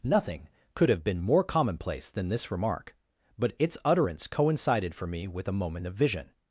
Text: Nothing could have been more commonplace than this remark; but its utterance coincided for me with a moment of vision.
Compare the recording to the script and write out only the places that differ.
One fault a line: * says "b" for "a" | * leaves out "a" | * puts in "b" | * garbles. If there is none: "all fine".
all fine